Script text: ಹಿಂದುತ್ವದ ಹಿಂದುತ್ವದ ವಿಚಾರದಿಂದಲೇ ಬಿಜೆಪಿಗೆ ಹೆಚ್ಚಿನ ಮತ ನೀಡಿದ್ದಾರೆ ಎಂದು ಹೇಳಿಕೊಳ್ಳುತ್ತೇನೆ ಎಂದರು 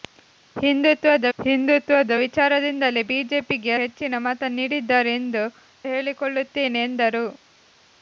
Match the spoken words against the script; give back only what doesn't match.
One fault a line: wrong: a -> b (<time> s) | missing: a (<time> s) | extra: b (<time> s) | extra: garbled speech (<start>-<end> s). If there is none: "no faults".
no faults